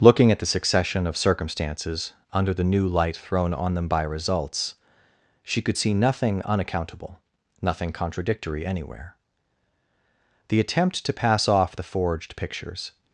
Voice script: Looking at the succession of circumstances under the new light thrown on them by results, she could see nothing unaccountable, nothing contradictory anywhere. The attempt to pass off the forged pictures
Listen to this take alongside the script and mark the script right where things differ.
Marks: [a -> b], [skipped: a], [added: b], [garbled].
Looking at the succession of circumstances under the new light thrown on them by results, she could see nothing unaccountable, nothing contradictory anywhere. The attempt to pass off the forged pictures